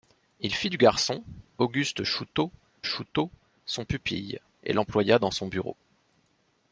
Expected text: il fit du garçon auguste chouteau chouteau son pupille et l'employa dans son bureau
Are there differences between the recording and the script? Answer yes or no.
no